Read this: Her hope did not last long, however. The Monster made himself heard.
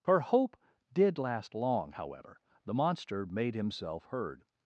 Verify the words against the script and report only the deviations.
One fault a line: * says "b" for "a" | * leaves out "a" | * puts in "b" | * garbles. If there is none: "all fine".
* leaves out "not"